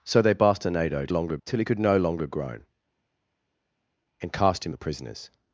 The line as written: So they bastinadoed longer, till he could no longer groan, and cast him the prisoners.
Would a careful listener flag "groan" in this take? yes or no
no